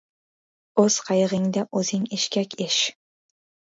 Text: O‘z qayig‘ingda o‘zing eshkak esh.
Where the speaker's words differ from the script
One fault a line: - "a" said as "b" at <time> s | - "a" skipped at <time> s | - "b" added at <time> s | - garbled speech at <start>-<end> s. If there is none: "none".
none